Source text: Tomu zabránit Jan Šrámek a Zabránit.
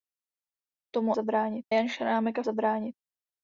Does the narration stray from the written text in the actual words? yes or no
no